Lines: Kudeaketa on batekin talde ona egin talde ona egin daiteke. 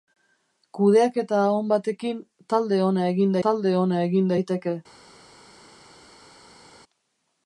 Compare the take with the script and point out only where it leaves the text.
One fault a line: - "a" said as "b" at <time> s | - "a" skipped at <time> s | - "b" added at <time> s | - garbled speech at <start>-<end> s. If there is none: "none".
none